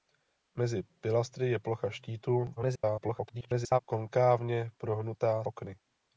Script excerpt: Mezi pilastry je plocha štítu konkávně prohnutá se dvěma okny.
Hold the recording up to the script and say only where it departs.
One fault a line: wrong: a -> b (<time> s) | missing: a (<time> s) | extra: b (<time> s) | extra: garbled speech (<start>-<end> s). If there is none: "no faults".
extra: garbled speech (2.6-3.8 s)
missing: se dvěma (5.4 s)